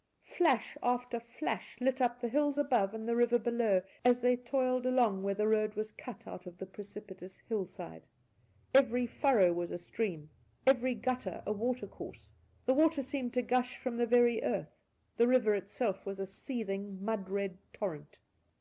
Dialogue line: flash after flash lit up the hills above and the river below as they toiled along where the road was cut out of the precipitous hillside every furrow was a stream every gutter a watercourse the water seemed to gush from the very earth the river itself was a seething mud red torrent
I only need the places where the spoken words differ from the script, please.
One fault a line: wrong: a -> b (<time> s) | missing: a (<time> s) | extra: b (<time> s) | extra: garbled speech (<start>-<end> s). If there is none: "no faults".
no faults